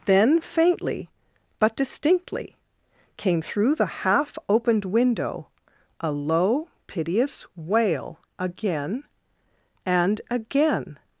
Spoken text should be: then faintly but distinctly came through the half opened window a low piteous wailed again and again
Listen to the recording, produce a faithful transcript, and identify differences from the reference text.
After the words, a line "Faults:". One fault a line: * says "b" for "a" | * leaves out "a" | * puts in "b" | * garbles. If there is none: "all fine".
then faintly but distinctly came through the half opened window a low piteous wail again and again
Faults:
* says "wail" for "wailed"